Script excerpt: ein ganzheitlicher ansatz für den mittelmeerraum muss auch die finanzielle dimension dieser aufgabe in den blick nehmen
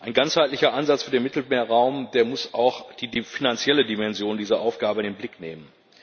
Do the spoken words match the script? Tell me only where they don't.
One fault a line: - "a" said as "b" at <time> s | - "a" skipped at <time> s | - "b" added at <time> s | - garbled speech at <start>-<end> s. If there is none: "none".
none